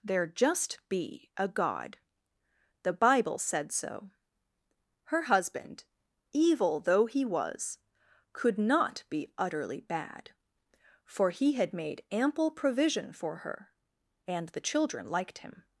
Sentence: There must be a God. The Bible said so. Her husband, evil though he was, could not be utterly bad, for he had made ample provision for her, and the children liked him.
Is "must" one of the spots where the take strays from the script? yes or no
yes